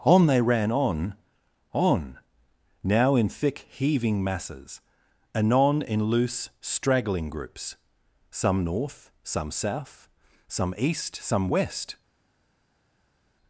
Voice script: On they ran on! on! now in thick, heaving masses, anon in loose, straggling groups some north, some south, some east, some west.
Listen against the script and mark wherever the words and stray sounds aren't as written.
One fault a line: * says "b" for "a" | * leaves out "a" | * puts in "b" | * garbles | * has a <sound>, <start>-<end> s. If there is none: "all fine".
all fine